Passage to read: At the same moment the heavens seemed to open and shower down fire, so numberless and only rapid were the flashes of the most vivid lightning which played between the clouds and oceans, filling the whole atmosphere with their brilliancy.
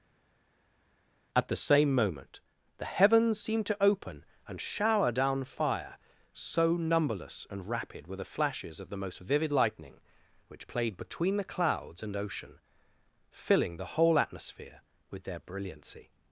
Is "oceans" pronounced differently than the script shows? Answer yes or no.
yes